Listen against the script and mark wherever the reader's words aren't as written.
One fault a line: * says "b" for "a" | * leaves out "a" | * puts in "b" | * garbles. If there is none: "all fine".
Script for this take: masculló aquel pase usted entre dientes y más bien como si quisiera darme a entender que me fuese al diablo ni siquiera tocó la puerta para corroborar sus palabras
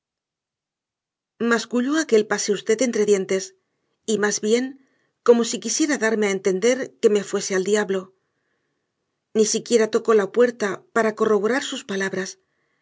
all fine